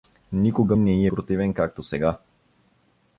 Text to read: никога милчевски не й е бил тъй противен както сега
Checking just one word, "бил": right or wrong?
wrong